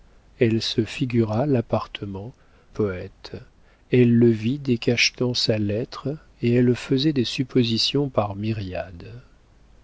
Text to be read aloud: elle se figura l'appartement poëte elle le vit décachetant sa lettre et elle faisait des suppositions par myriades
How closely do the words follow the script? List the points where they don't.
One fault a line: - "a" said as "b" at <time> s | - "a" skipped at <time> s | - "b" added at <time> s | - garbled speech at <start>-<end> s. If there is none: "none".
none